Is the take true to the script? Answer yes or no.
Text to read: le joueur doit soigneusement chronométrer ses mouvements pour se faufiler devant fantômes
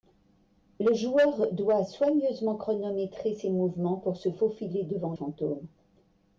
yes